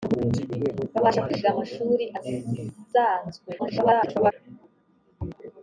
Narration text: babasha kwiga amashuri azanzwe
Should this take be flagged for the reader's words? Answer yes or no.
yes